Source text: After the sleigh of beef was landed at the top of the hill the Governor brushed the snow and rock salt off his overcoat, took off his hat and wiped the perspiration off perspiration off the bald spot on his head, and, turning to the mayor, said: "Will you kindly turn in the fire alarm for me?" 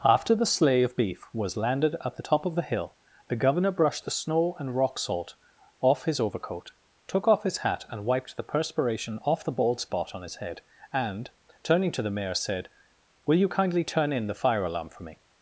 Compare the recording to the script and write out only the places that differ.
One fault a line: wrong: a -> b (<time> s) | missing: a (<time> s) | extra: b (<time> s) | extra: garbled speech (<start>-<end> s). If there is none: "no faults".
missing: perspiration off (9.4 s)